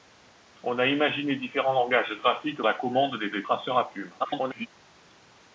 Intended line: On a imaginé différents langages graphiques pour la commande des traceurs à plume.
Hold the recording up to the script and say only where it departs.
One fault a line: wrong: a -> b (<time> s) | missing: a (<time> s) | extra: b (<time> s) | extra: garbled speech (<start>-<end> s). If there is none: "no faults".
missing: pour (2.6 s)
extra: des (3.3 s)
extra: garbled speech (4.2-4.7 s)